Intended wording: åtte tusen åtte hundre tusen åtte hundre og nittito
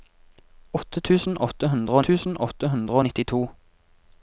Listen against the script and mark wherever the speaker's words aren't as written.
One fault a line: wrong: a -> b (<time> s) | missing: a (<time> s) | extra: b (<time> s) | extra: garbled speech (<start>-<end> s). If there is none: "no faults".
no faults